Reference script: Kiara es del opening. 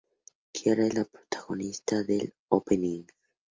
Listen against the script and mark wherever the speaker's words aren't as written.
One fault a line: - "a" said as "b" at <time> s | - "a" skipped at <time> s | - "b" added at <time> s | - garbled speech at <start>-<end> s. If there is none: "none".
- "la protagonista" added at 0.9 s